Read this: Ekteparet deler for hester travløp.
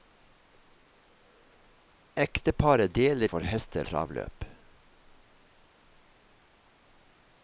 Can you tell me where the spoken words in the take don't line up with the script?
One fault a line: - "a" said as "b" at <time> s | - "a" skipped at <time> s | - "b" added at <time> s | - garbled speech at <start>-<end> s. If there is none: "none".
none